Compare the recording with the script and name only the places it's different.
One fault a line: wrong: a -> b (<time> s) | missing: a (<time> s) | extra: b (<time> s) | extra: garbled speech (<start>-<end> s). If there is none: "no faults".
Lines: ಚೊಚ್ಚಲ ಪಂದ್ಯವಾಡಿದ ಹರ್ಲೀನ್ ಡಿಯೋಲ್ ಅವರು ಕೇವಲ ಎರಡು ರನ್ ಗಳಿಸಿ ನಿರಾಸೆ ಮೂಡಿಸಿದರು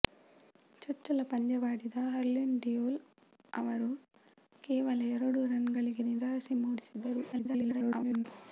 extra: garbled speech (7.3-8.2 s)